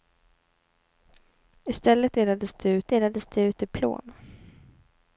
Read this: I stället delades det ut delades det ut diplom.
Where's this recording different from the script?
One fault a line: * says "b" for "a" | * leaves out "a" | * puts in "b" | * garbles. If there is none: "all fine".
all fine